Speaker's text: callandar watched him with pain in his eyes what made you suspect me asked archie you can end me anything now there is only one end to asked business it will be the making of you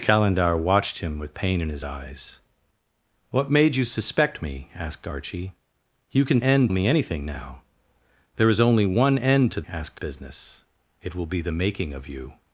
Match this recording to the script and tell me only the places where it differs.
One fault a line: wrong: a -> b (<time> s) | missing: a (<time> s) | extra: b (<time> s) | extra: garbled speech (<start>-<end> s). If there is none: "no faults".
no faults